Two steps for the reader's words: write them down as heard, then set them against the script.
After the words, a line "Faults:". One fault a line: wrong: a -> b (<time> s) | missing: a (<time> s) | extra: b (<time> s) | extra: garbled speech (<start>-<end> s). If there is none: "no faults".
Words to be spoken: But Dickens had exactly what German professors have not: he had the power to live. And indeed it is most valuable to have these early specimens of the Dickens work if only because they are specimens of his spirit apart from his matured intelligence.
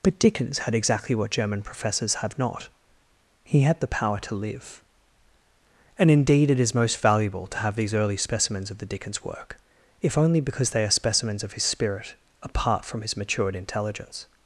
But Dickens had exactly what German professors have not: he had the power to live. And indeed it is most valuable to have these early specimens of the Dickens work if only because they are specimens of his spirit apart from his matured intelligence.
Faults:
no faults